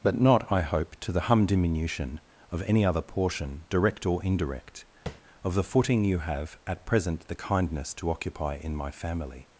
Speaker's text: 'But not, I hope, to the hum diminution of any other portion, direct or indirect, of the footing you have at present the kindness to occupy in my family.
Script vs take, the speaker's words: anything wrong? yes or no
no